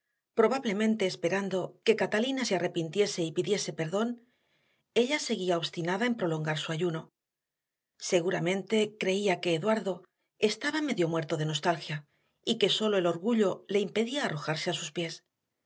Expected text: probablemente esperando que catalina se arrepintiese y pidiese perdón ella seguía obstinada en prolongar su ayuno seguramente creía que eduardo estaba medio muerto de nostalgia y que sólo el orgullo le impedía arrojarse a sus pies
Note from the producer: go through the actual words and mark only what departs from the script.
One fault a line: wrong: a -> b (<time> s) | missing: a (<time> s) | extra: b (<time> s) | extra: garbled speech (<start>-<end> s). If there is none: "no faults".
no faults